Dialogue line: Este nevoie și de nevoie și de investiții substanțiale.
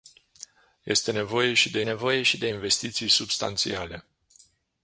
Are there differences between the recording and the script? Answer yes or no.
no